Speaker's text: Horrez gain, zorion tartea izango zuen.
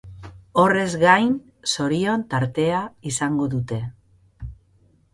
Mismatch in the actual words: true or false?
true